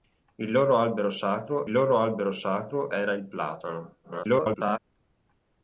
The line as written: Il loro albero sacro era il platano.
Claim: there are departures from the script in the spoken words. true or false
true